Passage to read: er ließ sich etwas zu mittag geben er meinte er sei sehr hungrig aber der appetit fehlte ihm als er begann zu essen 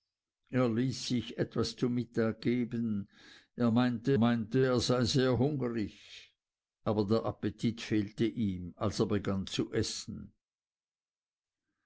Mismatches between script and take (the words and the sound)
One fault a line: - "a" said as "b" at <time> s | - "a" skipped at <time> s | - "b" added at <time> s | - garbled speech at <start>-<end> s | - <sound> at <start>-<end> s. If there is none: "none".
- "meinte" added at 4.1 s